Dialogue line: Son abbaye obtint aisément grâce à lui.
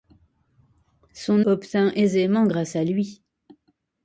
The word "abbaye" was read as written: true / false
false